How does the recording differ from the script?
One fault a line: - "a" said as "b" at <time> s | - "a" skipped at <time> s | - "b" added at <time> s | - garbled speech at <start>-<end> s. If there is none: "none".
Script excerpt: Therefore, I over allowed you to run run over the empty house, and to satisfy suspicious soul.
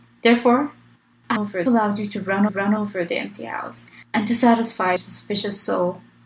none